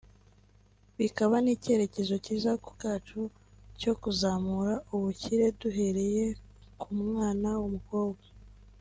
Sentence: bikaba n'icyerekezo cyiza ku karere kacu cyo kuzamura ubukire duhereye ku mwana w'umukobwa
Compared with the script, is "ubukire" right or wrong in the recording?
right